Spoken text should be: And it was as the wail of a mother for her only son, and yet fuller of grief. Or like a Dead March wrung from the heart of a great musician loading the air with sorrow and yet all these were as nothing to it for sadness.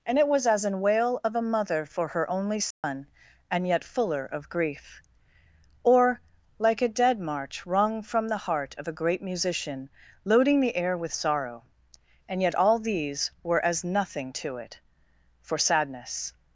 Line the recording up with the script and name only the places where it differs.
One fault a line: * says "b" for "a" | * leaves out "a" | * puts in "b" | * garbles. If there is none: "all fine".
* says "an" for "the"